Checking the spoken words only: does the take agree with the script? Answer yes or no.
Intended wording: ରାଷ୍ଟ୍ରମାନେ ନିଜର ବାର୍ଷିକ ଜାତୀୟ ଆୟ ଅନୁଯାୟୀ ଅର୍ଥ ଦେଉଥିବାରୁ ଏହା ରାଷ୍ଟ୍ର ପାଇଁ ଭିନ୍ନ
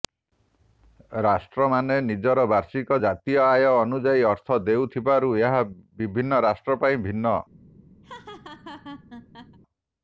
no